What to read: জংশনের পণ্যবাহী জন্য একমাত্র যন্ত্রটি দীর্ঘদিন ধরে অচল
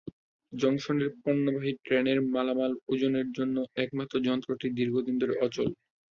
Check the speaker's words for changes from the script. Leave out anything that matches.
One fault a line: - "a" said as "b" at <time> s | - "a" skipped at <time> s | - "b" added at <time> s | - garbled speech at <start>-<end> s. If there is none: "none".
- "ট্রেনের মালামাল ওজনের" added at 1.8 s